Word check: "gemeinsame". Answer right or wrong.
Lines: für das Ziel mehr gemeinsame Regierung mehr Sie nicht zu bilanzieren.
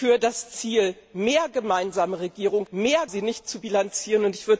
right